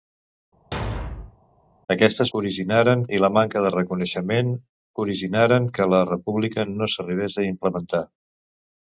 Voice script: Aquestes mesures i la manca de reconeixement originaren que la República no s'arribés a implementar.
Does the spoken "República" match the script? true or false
true